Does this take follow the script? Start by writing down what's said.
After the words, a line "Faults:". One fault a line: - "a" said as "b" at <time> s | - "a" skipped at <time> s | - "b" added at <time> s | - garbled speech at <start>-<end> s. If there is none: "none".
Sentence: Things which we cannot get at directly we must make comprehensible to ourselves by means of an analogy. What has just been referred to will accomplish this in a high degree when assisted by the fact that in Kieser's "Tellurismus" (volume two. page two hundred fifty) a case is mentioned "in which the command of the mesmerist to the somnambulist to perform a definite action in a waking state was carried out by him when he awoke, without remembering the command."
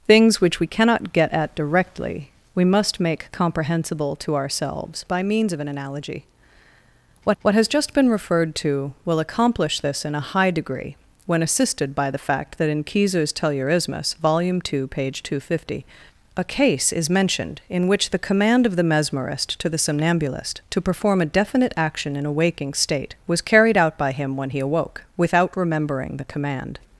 Things which we cannot get at directly we must make comprehensible to ourselves by means of an analogy. What what has just been referred to will accomplish this in a high degree when assisted by the fact that in Kieser's "Tellurismus" (volume two. page two hundred fifty) a case is mentioned "in which the command of the mesmerist to the somnambulist to perform a definite action in a waking state was carried out by him when he awoke, without remembering the command."
Faults:
- "what" added at 7.4 s